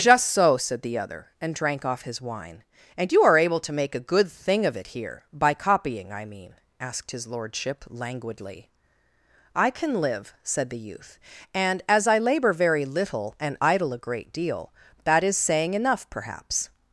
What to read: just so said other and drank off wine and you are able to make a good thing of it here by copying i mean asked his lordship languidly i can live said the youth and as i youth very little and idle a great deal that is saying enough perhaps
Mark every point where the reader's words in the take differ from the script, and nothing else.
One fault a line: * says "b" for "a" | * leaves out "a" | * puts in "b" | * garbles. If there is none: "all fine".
* puts in "the"
* puts in "his"
* says "labor" for "youth"